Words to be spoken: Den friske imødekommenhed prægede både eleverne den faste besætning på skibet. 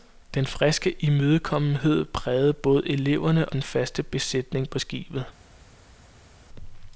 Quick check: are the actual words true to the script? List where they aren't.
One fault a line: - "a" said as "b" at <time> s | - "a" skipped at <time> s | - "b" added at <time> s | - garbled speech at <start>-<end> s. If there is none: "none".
none